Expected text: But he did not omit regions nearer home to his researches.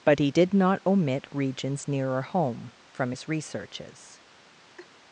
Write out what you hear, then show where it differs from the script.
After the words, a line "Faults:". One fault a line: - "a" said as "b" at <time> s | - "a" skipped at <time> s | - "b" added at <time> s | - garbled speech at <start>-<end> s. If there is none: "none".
But he did not omit regions nearer home from his researches.
Faults:
- "to" said as "from" at 2.9 s